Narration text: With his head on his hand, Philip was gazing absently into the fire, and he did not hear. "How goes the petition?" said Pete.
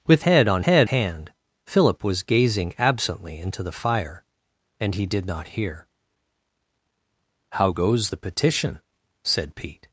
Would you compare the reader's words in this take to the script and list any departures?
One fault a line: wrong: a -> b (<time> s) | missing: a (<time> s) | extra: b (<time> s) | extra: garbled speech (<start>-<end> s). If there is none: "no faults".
missing: his (0.2 s)
wrong: his -> head (0.6 s)